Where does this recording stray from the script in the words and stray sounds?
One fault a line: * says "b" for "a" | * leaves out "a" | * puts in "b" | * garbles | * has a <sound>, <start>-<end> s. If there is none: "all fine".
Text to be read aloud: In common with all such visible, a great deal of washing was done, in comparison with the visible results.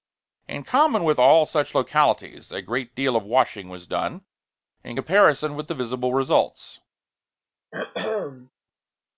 * says "localities" for "visible"
* has a throat clearing, 7.7-8.5 s